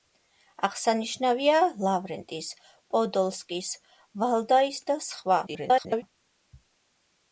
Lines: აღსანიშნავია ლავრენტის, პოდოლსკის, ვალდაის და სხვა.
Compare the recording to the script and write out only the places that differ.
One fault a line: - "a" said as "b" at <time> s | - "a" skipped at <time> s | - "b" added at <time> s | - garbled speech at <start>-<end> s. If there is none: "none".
- garbled speech at 5.5-6.0 s